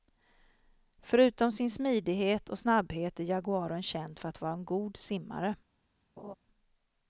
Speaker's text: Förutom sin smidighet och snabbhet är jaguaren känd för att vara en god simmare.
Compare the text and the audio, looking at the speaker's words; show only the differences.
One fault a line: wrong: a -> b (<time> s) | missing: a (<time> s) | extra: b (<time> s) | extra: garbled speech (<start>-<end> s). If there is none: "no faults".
no faults